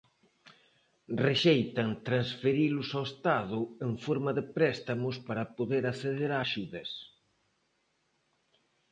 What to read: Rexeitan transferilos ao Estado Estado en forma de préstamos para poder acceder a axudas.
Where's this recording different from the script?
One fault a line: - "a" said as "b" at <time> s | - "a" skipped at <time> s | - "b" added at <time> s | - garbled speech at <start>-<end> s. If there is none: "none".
- "Estado" skipped at 3.6 s